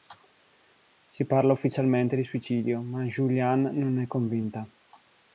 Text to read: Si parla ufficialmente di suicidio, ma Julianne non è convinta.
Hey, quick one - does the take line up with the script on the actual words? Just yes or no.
yes